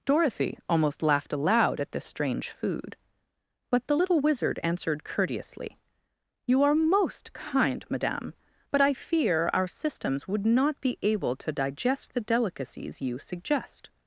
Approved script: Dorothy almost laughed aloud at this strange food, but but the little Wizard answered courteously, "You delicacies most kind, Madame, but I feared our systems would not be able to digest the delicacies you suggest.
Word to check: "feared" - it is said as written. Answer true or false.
false